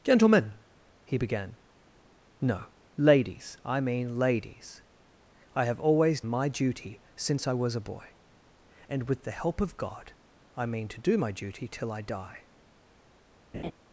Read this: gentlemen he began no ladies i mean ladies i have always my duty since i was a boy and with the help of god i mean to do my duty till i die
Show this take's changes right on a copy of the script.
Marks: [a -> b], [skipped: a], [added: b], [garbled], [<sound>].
gentlemen he began no ladies i mean ladies i have always my duty since i was a boy and with the help of god i mean to do my duty till i die [laugh]